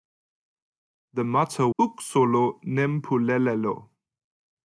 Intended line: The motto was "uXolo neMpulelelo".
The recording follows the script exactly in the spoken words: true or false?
false